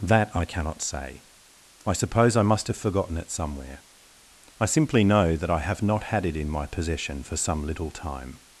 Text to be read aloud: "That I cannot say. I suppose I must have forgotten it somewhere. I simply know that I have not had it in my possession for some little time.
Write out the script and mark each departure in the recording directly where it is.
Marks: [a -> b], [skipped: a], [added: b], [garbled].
"That I cannot say. I suppose I must have forgotten it somewhere. I simply know that I have not had it in my possession for some little time.